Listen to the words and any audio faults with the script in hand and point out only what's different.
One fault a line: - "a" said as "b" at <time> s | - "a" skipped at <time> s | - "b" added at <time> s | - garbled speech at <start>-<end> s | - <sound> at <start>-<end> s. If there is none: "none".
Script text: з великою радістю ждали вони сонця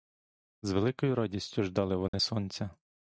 - dropout at 2.1-2.1 s